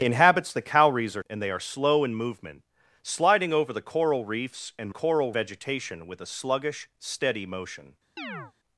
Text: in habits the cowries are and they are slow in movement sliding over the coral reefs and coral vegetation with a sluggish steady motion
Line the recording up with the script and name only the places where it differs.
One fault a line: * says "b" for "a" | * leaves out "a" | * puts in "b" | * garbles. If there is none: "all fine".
all fine